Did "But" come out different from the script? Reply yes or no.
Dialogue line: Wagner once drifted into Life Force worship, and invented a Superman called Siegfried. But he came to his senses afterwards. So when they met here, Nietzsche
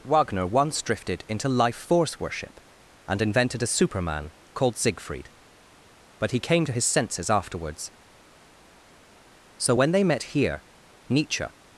no